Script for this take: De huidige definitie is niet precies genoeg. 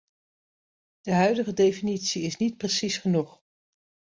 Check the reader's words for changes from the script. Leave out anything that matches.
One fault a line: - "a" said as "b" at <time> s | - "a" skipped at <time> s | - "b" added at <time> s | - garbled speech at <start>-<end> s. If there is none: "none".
none